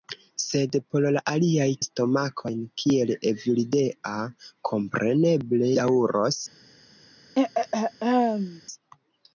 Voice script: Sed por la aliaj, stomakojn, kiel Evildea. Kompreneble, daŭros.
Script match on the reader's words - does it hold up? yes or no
yes